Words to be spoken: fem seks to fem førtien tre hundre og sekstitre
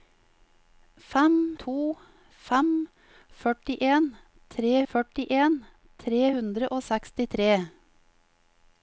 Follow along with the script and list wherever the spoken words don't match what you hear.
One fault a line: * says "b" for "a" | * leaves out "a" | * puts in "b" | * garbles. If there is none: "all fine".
* leaves out "seks"
* puts in "førtien tre"